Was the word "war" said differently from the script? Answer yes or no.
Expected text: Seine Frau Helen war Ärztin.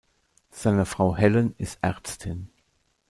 yes